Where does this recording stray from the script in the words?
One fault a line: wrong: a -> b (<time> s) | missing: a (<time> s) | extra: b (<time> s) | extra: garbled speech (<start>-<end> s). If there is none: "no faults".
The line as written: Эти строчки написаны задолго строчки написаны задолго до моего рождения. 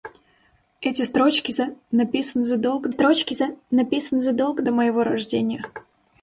no faults